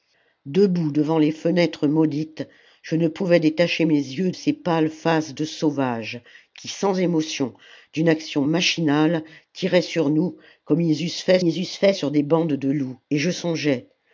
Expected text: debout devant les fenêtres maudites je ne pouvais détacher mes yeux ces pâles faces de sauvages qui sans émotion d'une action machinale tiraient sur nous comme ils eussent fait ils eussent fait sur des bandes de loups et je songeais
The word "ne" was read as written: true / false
true